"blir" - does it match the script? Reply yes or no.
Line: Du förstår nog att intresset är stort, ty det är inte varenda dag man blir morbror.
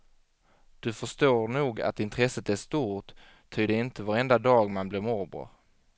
yes